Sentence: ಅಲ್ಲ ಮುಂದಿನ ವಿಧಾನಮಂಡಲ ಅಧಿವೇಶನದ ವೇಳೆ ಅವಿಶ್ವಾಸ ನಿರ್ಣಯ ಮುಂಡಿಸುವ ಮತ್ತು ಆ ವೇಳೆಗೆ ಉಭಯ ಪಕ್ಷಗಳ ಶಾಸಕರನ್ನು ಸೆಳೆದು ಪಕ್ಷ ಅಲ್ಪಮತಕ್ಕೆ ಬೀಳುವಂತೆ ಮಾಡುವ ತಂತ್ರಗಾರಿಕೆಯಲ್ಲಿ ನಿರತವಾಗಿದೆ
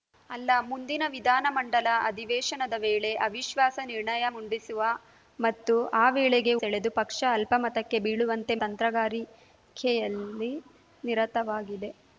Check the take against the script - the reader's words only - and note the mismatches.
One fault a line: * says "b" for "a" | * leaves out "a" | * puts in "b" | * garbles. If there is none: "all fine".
* leaves out "ಉಭಯ ಪಕ್ಷಗಳ ಶಾಸಕರನ್ನು"
* leaves out "ಮಾಡುವ"